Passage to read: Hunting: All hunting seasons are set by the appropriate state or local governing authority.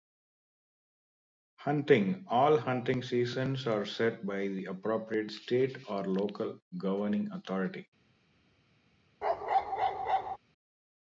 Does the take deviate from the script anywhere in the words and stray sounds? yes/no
yes